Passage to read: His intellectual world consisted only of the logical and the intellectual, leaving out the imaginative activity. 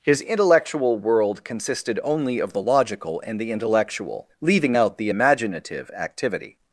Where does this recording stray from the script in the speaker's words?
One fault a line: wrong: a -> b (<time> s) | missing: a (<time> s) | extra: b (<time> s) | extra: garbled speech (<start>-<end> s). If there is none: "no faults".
no faults